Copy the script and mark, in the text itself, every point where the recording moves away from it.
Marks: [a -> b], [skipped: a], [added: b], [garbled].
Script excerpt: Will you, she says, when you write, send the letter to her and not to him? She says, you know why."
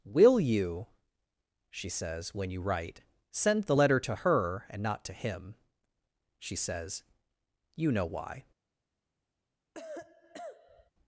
Will you, she says, when you write, send the letter to her and not to him? She says, you know why."